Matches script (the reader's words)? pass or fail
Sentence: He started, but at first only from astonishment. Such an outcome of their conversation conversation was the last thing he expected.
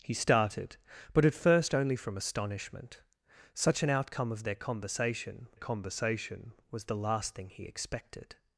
pass